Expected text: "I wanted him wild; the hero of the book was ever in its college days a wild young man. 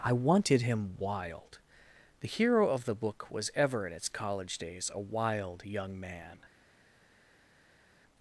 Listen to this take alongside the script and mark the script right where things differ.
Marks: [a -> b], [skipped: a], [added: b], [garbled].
"I wanted him wild; the hero of the book was ever in its college days a wild young man.